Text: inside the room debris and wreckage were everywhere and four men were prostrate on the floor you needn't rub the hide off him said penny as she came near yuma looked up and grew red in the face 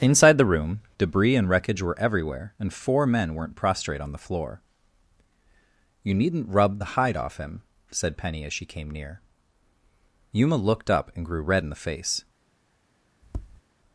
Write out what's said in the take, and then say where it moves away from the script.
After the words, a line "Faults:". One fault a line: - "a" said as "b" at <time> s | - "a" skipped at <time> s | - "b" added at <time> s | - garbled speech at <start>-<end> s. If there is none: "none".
inside the room debris and wreckage were everywhere and four men weren't prostrate on the floor you needn't rub the hide off him said penny as she came near yuma looked up and grew red in the face
Faults:
- "were" said as "weren't" at 3.4 s